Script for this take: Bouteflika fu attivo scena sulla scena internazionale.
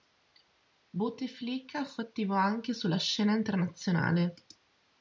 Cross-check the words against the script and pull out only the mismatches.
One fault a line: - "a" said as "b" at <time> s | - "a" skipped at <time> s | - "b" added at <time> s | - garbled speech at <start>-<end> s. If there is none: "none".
- "scena" said as "anche" at 2.3 s